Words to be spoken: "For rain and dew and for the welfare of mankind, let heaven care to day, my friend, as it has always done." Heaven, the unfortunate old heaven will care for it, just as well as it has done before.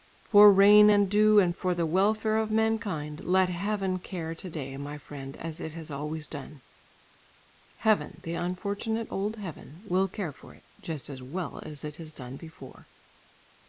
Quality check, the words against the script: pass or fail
pass